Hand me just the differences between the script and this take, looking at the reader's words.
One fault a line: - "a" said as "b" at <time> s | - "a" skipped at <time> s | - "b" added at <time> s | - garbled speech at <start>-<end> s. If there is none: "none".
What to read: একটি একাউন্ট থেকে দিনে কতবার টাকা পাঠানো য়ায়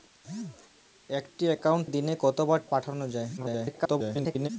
- "থেকে" skipped at 1.9 s
- "টাকা" skipped at 2.6 s
- garbled speech at 3.4-4.5 s